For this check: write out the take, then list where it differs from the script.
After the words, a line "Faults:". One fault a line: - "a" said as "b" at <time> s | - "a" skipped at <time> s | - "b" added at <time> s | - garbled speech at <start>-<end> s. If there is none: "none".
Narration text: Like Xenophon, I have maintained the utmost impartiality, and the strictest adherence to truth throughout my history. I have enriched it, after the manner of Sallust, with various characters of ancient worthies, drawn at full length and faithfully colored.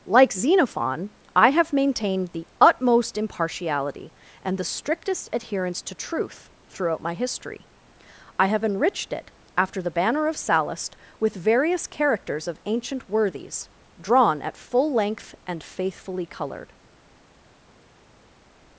Like Xenophon, I have maintained the utmost impartiality, and the strictest adherence to truth throughout my history. I have enriched it, after the banner of Sallust, with various characters of ancient worthies, drawn at full length and faithfully colored.
Faults:
- "manner" said as "banner" at 9.9 s